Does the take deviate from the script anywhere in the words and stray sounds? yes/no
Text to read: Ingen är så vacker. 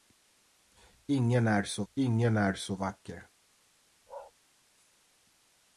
yes